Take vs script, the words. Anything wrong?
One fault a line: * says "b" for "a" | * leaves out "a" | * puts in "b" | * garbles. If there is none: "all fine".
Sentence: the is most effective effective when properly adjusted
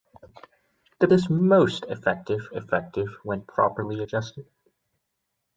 all fine